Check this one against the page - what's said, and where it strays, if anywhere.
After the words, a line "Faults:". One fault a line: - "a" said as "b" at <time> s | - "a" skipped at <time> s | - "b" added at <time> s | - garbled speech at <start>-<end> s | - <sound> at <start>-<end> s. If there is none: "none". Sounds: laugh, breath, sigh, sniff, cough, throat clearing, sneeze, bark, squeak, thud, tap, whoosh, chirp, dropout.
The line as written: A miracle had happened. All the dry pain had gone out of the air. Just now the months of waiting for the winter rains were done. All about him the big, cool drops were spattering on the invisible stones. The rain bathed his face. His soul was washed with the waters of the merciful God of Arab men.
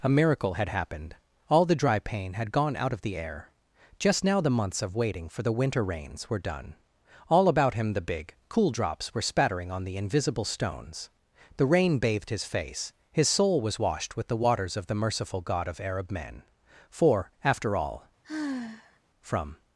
A miracle had happened. All the dry pain had gone out of the air. Just now the months of waiting for the winter rains were done. All about him the big, cool drops were spattering on the invisible stones. The rain bathed his face. His soul was washed with the waters of the merciful God of Arab men. For, after all, from
Faults:
- "For after all from" added at 16.9 s
- sigh at 18.2-19.0 s